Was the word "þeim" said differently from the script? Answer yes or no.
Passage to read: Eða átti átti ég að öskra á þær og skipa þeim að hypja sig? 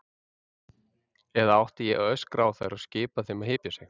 no